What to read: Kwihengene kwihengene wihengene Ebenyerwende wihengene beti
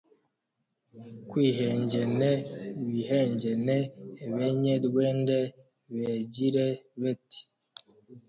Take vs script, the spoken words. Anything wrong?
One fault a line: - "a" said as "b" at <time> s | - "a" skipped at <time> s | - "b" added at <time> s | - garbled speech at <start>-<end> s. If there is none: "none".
- "kwihengene" skipped at 2.3 s
- "wihengene" said as "begire" at 6.0 s